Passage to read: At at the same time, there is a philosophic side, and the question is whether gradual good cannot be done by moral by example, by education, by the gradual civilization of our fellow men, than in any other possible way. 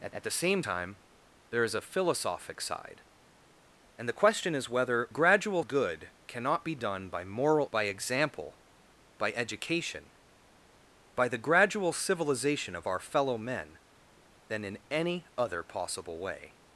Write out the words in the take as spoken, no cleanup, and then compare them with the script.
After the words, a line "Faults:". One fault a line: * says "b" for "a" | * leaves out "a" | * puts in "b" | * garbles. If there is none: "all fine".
At at the same time, there is a philosophic side, and the question is whether gradual good cannot be done by moral by example, by education, by the gradual civilization of our fellow men, than in any other possible way.
Faults:
all fine